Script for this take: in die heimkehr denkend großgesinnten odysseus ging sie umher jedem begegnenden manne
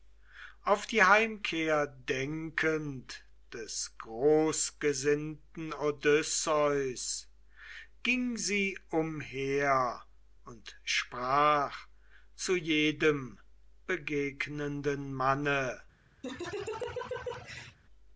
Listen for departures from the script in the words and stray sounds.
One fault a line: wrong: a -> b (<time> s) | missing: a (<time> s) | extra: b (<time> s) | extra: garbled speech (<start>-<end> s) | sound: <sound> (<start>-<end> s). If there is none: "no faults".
wrong: in -> auf (0.6 s)
extra: des (3.5 s)
extra: und sprach zu (10.5 s)
sound: laugh (16.2-17.8 s)